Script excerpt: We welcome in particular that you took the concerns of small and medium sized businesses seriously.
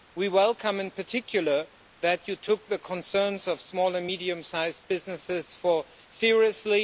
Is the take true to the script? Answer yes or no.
yes